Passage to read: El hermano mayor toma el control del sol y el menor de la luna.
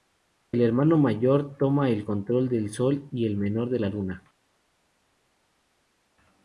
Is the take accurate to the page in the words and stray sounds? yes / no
yes